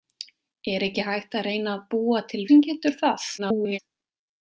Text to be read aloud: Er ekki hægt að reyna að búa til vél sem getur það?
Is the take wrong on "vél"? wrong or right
wrong